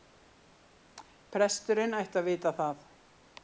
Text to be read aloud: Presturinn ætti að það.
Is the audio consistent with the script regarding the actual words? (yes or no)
no